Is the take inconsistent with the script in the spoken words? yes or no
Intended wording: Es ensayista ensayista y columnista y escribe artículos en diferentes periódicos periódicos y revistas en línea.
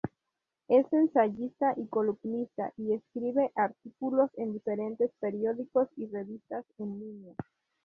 yes